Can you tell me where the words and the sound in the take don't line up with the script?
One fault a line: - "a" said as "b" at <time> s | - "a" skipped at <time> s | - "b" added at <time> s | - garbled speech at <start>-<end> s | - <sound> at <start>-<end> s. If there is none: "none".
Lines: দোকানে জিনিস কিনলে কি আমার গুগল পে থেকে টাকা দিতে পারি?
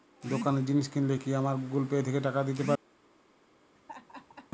- laugh at 3.8-4.5 s